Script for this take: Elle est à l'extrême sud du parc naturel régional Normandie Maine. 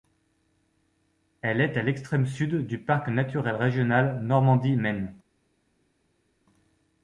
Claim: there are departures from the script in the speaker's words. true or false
false